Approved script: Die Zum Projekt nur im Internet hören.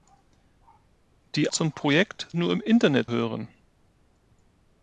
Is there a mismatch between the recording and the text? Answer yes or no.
no